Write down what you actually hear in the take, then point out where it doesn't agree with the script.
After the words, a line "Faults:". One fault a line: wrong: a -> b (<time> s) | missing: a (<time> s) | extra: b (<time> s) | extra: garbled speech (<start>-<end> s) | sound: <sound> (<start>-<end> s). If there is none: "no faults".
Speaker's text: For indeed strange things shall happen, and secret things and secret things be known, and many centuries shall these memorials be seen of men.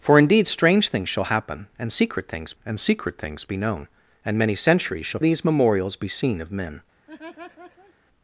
For indeed strange things shall happen, and secret things and secret things be known, and many centuries shall these memorials be seen of men.
Faults:
sound: laugh (7.1-7.9 s)